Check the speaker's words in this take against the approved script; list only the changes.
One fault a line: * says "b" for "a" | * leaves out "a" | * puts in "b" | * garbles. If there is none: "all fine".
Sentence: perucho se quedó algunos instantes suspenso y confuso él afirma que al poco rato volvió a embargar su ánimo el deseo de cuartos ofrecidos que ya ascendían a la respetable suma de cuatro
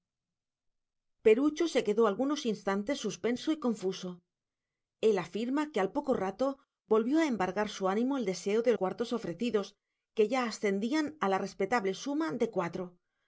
all fine